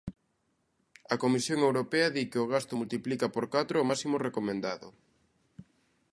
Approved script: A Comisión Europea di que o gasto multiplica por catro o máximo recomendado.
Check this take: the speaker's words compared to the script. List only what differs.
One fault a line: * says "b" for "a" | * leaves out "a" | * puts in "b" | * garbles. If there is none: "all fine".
all fine